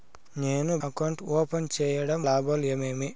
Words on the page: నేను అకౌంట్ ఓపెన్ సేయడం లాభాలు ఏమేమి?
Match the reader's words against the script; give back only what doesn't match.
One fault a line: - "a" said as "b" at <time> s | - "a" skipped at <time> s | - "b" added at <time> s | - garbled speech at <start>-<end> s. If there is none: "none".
none